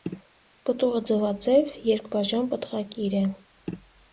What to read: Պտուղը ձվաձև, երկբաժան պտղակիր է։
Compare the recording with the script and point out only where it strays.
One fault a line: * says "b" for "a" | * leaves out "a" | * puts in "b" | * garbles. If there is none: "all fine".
all fine